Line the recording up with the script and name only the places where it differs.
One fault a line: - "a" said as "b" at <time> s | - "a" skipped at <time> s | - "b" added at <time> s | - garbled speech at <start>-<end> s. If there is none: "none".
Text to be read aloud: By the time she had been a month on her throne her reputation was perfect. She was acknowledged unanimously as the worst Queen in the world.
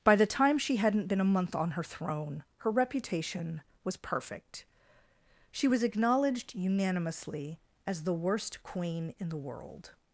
- "had" said as "hadn't" at 0.8 s